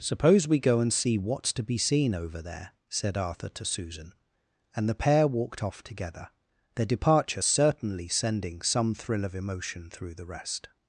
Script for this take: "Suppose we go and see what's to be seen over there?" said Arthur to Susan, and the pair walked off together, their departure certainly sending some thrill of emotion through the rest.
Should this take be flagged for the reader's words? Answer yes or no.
no